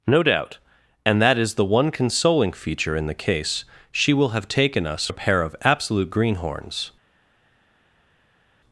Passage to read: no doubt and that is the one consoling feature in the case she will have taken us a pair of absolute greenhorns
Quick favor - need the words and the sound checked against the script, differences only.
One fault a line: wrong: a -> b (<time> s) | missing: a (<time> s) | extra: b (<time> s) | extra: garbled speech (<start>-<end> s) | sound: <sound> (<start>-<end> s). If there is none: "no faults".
no faults